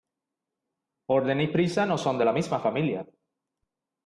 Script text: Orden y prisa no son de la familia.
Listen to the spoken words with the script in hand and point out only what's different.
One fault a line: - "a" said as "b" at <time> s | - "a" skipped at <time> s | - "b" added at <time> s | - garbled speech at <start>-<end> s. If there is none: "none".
- "misma" added at 2.3 s